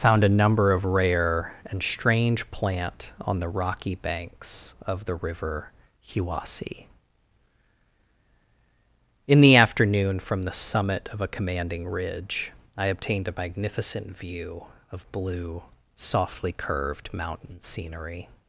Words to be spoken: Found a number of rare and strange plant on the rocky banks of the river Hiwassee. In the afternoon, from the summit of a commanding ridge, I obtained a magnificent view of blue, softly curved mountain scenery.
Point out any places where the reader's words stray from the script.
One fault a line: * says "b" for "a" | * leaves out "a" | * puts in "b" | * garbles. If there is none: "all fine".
all fine